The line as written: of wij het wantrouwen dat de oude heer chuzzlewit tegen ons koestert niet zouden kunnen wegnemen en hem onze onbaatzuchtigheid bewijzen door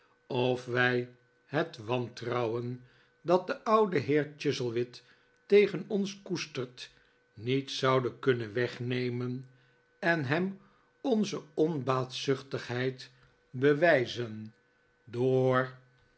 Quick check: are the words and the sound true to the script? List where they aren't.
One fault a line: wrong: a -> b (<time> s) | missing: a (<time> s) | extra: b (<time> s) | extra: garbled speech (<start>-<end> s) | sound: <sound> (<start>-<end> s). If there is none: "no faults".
no faults